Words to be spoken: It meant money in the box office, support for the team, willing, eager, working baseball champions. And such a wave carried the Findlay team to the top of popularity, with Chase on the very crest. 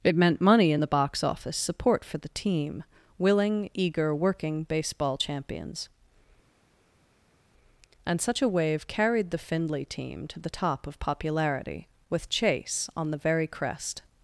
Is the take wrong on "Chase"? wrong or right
right